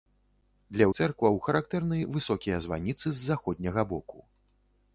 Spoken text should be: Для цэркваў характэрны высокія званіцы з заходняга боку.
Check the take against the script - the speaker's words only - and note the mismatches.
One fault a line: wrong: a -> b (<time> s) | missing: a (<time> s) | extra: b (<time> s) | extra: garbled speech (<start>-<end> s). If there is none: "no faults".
no faults